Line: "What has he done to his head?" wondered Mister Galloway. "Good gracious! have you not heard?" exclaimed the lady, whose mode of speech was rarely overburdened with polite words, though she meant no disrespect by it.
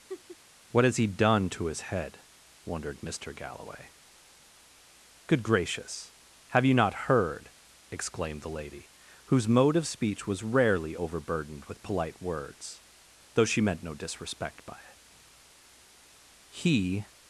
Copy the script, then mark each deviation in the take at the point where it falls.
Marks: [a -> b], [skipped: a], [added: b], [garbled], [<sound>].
[laugh] "What has he done to his head?" wondered Mister Galloway. "Good gracious! have you not heard?" exclaimed the lady, whose mode of speech was rarely overburdened with polite words, though she meant no disrespect by it. [added: He]